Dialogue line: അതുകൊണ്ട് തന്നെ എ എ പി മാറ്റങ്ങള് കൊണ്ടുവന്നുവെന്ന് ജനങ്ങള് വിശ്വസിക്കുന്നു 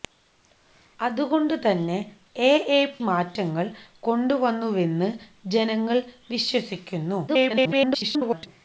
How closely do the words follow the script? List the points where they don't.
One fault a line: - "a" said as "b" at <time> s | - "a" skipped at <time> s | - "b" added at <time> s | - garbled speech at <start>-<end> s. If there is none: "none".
- "പി" skipped at 3.0 s
- garbled speech at 7.3-8.5 s